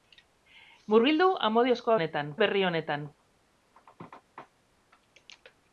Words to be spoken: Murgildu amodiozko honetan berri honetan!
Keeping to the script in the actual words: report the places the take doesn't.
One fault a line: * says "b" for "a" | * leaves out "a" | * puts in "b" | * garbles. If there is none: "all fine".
all fine